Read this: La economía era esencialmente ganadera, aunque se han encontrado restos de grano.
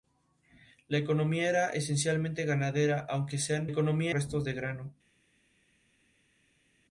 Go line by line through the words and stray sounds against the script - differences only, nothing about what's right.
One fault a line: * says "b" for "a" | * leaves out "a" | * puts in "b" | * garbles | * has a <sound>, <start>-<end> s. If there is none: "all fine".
* says "economía" for "encontrado"